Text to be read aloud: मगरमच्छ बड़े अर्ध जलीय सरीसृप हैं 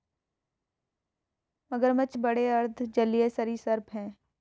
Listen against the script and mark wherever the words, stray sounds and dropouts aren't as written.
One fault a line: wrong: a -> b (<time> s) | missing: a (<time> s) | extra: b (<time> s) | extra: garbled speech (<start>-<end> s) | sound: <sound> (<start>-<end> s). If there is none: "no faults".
no faults